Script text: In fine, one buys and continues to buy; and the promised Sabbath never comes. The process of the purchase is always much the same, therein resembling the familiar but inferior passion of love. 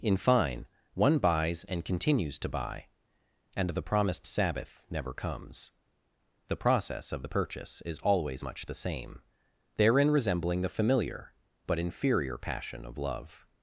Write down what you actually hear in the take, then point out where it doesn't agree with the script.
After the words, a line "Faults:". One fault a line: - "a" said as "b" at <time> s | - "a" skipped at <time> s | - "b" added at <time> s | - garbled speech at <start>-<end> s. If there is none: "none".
In fine, one buys and continues to buy; and the promised Sabbath never comes. The process of the purchase is always much the same, therein resembling the familiar but inferior passion of love.
Faults:
none